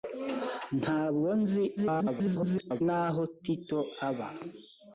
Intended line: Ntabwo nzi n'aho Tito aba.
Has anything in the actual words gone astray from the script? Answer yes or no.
yes